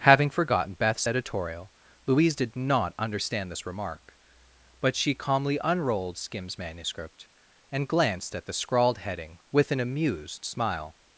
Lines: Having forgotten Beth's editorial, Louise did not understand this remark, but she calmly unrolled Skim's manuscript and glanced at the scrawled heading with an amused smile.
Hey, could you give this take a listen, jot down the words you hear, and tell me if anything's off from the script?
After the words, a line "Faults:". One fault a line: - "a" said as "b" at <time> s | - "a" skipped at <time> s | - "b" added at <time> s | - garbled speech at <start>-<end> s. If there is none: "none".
Having forgotten Beth's editorial, Louise did not understand this remark, but she calmly unrolled Skim's manuscript and glanced at the scrawled heading with an amused smile.
Faults:
none